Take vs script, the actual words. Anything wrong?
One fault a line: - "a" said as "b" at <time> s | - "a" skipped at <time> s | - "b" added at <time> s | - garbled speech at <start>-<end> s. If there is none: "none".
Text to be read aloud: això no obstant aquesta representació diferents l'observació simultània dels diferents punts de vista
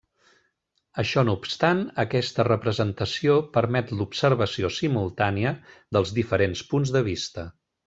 - "diferents" said as "permet" at 3.6 s